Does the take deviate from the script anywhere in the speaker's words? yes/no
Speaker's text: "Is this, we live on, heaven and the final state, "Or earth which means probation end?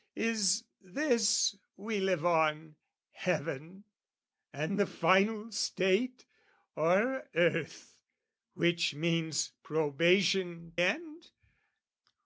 no